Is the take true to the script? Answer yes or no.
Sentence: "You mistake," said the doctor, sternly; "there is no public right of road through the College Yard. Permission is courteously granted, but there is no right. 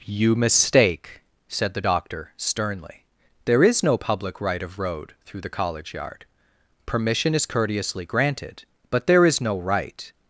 yes